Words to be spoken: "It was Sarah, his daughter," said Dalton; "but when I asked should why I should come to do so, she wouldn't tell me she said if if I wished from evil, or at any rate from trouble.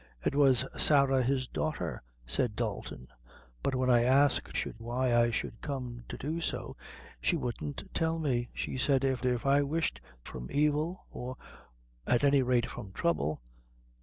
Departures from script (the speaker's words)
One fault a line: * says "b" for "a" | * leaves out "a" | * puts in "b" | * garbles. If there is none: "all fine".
all fine